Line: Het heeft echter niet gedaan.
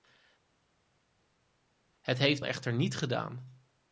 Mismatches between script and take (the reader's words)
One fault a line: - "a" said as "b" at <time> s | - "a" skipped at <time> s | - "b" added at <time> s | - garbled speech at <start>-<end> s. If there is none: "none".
none